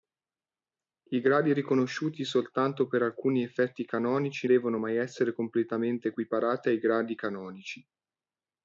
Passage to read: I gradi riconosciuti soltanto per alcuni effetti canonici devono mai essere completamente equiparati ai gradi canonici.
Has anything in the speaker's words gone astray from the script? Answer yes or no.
no